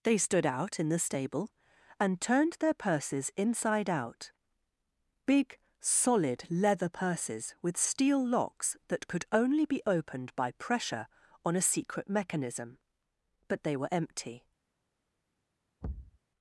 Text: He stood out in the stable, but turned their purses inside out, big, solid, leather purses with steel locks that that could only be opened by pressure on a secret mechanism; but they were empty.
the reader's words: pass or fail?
fail